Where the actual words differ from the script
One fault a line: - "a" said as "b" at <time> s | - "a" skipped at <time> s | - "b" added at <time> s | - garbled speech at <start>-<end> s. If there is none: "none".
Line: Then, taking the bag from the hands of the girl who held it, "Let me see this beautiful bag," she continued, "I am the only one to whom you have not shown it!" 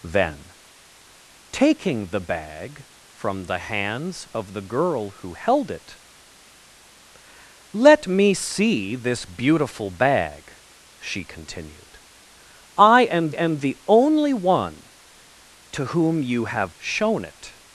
- "am" added at 13.3 s
- "not" skipped at 16.7 s